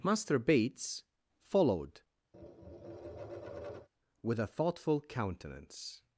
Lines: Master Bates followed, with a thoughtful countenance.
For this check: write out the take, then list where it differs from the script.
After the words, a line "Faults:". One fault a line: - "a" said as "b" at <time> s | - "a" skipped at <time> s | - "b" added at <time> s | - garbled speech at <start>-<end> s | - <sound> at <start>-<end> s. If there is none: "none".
Master Bates followed, with a thoughtful countenance.
Faults:
- tap at 2.3-3.9 s